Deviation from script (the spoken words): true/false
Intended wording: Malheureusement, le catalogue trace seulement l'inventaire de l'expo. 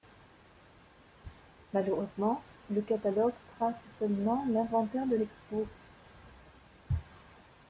false